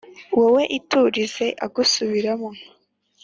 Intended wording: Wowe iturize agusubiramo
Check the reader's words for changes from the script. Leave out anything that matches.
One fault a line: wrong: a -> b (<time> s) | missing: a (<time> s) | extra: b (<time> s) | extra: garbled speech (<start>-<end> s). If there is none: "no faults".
no faults